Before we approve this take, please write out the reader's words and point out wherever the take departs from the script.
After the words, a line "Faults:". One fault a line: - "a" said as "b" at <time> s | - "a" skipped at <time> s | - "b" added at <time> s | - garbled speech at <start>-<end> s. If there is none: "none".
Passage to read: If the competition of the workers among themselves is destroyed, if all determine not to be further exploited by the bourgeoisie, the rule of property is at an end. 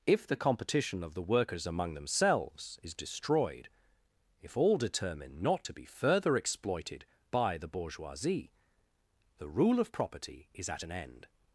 If the competition of the workers among themselves is destroyed, if all determine not to be further exploited by the bourgeoisie, the rule of property is at an end.
Faults:
none